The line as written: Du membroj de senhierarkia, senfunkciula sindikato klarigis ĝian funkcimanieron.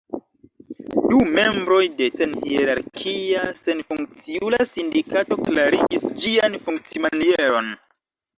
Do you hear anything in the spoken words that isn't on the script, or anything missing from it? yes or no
no